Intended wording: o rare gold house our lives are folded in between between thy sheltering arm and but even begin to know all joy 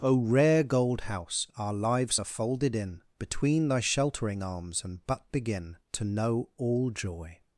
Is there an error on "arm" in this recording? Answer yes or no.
yes